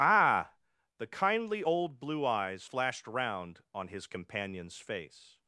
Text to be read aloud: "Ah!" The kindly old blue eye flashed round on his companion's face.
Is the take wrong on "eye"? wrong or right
wrong